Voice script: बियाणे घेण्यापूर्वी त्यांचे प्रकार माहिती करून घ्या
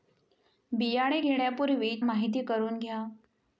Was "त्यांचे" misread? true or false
true